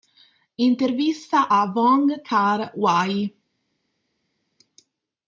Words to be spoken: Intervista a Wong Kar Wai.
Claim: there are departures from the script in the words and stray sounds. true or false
false